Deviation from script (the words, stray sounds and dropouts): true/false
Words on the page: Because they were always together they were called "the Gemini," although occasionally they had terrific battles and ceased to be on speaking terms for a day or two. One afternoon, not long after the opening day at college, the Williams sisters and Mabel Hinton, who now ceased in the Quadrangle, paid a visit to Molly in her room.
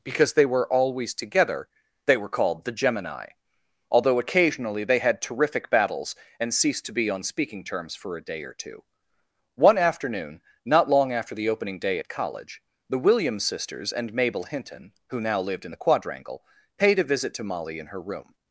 true